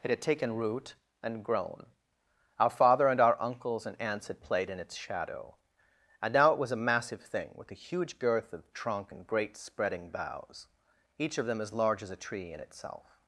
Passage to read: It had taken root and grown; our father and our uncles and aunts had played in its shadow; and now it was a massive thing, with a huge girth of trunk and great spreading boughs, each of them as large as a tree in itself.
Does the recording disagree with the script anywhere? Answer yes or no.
no